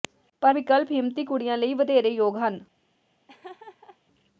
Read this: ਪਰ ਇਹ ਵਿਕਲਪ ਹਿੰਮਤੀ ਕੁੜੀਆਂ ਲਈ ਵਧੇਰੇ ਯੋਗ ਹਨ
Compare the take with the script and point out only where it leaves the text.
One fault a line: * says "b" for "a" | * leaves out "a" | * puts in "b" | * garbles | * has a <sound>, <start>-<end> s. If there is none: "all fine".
* leaves out "ਇਹ"
* has a laugh, 3.3-4.0 s